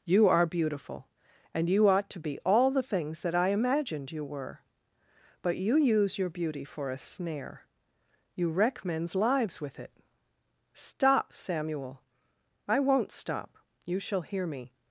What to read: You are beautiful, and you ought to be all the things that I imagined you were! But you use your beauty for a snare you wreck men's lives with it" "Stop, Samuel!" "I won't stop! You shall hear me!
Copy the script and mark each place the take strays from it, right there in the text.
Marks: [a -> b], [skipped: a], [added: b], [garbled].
You are beautiful, and you ought to be all the things that I imagined you were! But you use your beauty for a snare you wreck men's lives with it" "Stop, Samuel!" "I won't stop! You shall hear me!